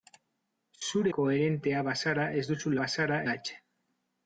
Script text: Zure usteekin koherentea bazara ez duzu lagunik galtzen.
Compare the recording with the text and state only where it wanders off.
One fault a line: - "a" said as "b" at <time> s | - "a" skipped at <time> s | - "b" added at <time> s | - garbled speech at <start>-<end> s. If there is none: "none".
- "usteekin" skipped at 1.1 s
- "lagunik" said as "bazara" at 2.8 s